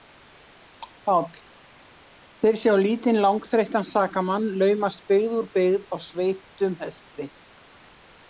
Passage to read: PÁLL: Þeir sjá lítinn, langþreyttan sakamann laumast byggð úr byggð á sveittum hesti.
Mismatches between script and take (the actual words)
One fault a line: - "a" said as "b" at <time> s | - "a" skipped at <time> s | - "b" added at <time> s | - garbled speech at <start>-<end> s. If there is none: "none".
none